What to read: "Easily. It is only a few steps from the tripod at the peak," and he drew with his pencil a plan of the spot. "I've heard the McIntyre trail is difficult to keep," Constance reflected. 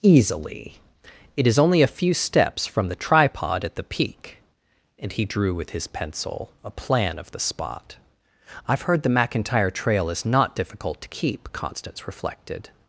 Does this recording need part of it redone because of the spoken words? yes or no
yes